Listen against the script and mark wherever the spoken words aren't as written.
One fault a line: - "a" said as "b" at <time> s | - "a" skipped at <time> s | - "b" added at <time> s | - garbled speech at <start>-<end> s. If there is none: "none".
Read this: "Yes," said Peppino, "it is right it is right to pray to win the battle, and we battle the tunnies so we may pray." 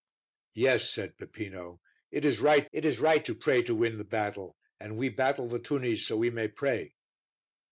none